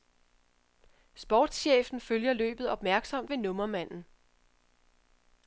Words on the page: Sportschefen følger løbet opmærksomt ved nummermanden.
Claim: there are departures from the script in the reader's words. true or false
false